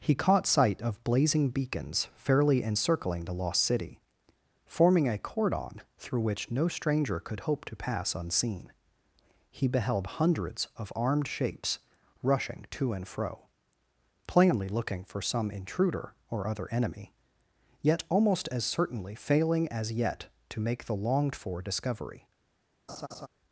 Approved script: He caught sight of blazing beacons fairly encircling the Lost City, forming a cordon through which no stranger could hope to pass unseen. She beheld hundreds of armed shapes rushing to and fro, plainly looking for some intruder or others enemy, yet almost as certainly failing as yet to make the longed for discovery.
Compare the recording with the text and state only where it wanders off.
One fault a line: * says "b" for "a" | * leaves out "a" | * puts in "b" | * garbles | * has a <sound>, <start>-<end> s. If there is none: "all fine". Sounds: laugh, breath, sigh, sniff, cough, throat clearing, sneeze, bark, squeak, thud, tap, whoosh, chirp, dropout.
* says "He" for "She"
* says "other" for "others"
* has a laugh, 22.9-23.3 s